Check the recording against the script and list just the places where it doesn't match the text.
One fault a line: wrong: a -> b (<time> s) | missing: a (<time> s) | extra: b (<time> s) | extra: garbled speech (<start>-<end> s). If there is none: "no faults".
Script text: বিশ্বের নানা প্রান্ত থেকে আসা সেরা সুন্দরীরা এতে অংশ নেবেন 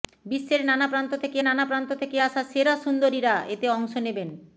extra: নানা প্রান্ত থেকে (1.4 s)